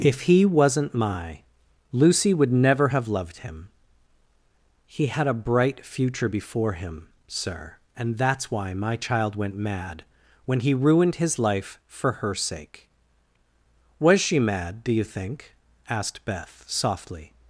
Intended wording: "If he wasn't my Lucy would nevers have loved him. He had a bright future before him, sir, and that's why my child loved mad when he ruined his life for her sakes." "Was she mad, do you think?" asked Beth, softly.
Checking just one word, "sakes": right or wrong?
wrong